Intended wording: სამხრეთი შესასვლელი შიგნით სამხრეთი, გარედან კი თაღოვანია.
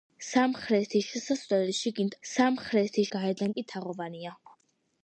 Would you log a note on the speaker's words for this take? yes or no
no